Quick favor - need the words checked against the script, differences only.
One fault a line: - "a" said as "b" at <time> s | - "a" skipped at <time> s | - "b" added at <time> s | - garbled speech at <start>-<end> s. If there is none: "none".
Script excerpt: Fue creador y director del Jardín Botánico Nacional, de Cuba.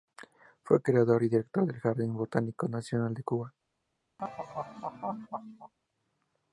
none